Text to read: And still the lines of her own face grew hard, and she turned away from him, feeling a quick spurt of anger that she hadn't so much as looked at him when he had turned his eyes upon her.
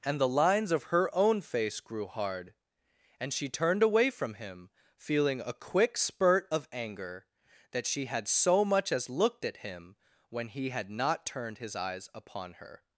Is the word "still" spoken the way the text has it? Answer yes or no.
no